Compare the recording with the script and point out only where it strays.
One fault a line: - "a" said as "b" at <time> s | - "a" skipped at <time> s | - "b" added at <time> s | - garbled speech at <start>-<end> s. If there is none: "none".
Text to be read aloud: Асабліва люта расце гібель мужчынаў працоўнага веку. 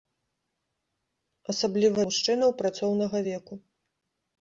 - "люта расце гібель" skipped at 2.0 s